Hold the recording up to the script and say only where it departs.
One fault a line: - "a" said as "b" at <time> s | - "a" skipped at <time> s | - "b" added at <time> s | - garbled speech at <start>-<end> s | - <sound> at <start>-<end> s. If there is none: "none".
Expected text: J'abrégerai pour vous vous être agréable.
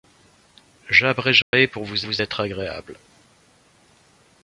- dropout at 1.4-1.5 s